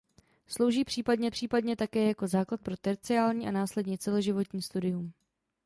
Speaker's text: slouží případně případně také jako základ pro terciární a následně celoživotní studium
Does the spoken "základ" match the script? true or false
true